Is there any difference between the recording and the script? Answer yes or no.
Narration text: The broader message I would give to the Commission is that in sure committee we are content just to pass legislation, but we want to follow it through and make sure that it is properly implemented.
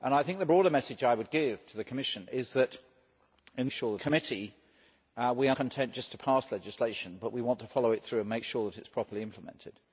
no